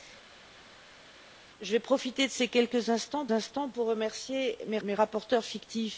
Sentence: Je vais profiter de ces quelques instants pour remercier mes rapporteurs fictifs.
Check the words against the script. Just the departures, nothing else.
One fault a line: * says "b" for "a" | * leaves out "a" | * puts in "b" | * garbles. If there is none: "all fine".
* puts in "instants"
* puts in "mes"